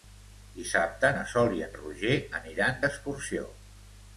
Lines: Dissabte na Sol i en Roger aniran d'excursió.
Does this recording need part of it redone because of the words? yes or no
no